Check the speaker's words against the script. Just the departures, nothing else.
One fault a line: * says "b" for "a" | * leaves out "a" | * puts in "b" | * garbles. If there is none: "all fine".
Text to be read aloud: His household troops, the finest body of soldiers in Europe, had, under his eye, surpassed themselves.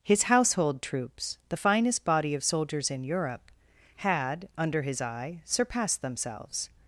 all fine